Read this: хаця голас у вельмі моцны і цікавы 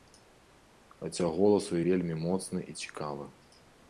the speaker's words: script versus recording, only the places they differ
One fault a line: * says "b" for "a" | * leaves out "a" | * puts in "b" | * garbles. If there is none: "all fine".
all fine